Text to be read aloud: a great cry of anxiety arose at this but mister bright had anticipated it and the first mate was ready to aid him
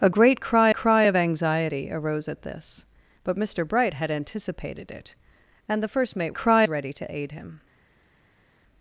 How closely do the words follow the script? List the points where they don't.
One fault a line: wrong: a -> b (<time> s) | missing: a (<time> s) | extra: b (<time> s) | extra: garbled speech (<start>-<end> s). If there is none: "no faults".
extra: cry (0.7 s)
wrong: was -> cry (6.3 s)